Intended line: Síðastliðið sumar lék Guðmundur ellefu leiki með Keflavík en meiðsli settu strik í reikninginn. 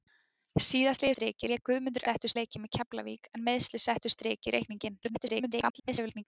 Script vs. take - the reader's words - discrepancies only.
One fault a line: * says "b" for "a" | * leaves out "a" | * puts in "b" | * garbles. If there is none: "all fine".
* says "strik" for "sumar"
* says "settu" for "ellefu"
* garbles